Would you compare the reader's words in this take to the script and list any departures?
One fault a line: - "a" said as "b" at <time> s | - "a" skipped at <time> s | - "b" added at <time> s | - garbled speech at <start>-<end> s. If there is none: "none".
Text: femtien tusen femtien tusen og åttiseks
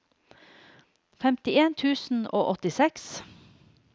- "femtien tusen" skipped at 2.2 s